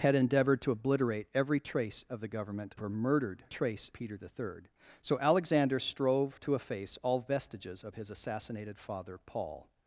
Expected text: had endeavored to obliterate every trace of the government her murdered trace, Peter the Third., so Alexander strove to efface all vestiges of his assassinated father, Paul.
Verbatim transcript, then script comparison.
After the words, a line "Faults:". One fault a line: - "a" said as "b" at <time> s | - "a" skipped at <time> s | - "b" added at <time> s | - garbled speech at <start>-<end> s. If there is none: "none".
had endeavored to obliterate every trace of the government her murdered trace, Peter the Third., so Alexander strove to efface all vestiges of his assassinated father, Paul.
Faults:
none